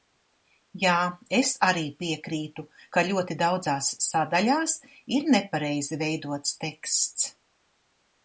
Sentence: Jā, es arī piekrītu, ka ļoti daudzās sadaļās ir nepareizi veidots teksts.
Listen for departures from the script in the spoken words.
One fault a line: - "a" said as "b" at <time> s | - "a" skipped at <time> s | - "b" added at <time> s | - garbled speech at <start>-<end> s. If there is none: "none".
none